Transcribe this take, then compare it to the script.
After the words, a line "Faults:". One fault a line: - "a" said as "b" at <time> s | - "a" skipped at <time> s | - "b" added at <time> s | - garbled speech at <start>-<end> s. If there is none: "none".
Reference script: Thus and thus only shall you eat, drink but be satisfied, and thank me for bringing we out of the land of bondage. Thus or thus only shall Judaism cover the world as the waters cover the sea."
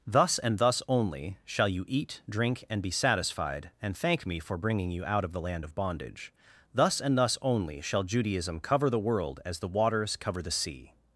Thus and thus only shall you eat, drink and be satisfied, and thank me for bringing you out of the land of bondage. Thus and thus only shall Judaism cover the world as the waters cover the sea."
Faults:
- "but" said as "and" at 2.7 s
- "we" said as "you" at 4.9 s
- "or" said as "and" at 7.0 s